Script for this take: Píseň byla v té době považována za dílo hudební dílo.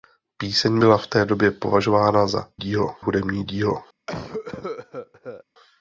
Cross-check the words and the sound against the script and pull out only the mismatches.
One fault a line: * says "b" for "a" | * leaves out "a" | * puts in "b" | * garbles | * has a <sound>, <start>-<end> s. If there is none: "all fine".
* has a cough, 4.1-5.4 s